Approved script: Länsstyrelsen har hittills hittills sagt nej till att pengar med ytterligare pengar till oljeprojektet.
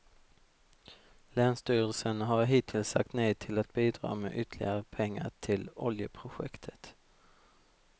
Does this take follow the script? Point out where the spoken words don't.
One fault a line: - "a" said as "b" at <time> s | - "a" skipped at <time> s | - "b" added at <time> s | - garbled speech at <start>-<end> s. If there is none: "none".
- "hittills" skipped at 2.9 s
- "pengar" said as "bidra" at 3.7 s